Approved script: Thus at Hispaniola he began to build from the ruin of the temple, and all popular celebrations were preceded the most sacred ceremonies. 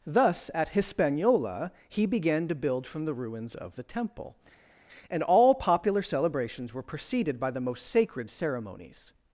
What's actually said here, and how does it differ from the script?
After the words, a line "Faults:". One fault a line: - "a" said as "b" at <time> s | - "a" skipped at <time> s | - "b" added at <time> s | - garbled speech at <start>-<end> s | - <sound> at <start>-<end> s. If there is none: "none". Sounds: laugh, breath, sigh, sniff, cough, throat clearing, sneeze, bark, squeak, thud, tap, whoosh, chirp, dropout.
Thus at Hispaniola he began to build from the ruins of the temple, and all popular celebrations were preceded by the most sacred ceremonies.
Faults:
- "ruin" said as "ruins" at 3.1 s
- "by" added at 7.4 s